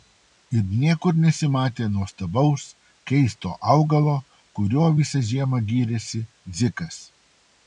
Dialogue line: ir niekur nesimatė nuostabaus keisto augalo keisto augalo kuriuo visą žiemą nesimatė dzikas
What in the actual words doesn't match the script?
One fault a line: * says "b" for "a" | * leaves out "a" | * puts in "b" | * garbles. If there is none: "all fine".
* leaves out "keisto augalo"
* says "gyrėsi" for "nesimatė"